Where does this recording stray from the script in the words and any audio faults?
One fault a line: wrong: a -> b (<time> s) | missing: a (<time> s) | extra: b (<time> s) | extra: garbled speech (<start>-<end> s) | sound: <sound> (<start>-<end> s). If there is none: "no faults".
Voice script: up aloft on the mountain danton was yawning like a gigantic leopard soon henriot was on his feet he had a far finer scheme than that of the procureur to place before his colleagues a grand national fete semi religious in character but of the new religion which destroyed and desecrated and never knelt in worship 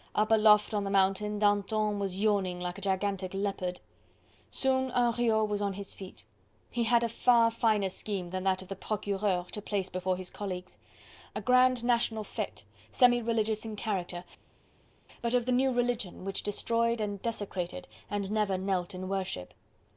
no faults